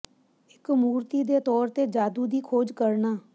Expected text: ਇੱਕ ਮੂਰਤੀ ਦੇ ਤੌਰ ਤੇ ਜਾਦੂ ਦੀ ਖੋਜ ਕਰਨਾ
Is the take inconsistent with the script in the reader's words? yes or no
no